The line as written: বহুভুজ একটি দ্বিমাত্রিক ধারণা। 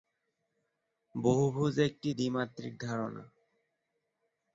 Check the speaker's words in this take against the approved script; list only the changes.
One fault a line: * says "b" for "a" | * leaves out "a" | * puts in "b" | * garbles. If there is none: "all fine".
all fine